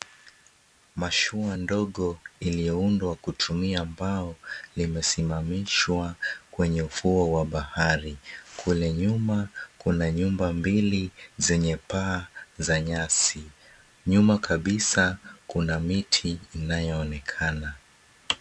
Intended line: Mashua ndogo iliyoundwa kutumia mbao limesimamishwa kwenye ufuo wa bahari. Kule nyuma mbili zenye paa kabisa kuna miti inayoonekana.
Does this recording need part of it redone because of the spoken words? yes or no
yes